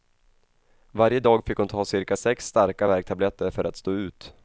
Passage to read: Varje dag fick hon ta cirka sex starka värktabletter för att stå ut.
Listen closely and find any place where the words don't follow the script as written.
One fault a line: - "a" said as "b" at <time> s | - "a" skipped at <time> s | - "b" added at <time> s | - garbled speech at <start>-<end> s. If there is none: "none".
none